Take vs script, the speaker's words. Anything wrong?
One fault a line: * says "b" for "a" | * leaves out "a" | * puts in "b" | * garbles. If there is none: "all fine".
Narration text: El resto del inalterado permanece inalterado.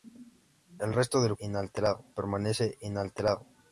all fine